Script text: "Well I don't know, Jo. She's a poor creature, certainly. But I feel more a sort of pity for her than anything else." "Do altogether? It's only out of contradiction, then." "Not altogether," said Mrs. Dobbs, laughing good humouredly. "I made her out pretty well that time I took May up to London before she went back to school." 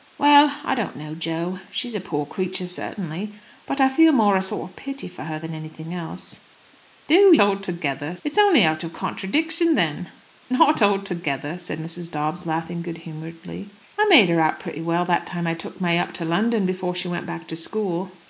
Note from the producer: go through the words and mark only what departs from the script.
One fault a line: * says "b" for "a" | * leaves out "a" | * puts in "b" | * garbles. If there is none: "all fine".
all fine